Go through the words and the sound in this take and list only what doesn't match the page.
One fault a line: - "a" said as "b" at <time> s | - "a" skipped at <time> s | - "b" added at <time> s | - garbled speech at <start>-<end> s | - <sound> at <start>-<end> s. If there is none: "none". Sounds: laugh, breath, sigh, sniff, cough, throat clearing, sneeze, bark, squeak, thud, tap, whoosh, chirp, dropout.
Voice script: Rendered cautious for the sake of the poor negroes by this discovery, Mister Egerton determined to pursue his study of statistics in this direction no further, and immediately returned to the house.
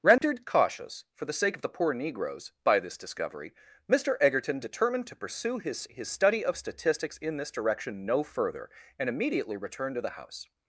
- dropout at 0.2-0.2 s
- "his" added at 5.9 s